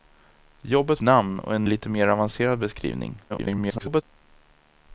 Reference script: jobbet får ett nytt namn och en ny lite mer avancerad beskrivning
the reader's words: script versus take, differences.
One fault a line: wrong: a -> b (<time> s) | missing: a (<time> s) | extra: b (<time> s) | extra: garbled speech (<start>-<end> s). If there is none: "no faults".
missing: får ett nytt (1.0 s)
missing: ny (1.7 s)
extra: garbled speech (3.3-4.0 s)